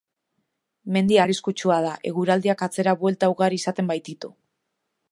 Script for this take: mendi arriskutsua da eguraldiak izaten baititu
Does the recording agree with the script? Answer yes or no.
no